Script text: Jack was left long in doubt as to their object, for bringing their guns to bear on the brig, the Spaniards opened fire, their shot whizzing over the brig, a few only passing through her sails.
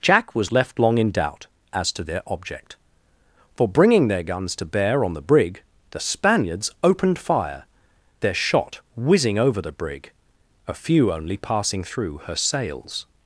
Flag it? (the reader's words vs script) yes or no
no